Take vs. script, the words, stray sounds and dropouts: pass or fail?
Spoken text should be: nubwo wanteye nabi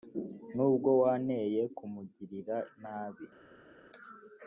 fail